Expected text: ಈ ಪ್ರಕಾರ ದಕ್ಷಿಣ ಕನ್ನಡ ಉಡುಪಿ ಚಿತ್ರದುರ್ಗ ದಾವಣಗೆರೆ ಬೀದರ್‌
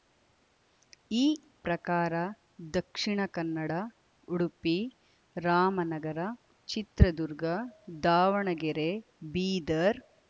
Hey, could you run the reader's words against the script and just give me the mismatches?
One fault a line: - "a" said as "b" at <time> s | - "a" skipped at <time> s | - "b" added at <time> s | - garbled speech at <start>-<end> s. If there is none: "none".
- "ರಾಮನಗರ" added at 5.3 s